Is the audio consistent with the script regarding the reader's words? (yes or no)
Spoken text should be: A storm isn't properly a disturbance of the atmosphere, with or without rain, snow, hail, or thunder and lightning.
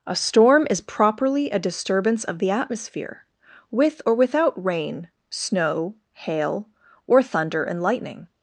no